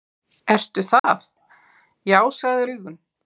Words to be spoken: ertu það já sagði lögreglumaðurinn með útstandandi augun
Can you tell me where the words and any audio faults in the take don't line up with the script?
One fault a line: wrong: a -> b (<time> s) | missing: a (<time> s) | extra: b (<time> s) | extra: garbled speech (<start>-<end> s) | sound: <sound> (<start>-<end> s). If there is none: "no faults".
sound: dropout (1.0-1.0 s)
missing: lögreglumaðurinn með útstandandi (2.7 s)